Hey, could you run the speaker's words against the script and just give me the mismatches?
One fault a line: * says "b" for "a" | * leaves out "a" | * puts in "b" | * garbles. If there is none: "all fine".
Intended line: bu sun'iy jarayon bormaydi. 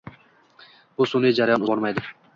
all fine